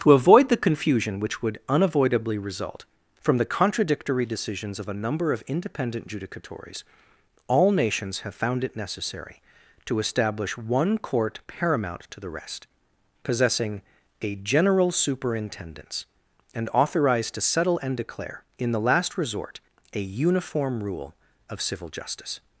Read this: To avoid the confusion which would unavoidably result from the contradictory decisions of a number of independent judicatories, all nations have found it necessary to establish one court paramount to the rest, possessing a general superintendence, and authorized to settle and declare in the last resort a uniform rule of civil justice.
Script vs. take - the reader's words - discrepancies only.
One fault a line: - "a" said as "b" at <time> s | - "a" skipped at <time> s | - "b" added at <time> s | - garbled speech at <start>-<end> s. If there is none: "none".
none